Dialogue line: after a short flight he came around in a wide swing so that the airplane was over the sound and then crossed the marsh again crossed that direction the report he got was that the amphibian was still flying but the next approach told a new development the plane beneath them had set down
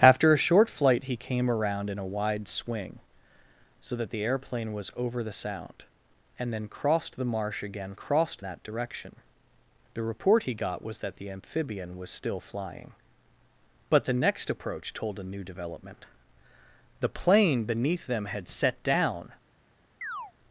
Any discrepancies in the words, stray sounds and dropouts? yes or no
yes